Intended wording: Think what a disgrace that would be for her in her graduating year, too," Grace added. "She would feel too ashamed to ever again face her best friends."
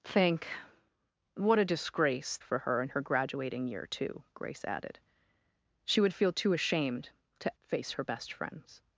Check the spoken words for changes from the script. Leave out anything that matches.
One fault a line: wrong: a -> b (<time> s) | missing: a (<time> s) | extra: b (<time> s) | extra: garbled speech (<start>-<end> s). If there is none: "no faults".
missing: that would be (2.4 s)
missing: ever again (7.6 s)